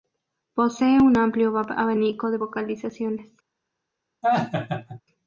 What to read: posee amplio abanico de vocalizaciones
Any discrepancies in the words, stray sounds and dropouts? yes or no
yes